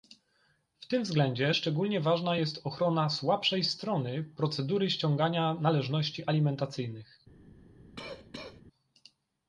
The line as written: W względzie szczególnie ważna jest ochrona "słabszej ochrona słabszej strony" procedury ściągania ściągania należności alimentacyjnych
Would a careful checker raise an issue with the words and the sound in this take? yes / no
yes